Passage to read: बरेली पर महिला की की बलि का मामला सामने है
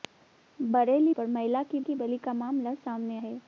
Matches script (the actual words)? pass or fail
pass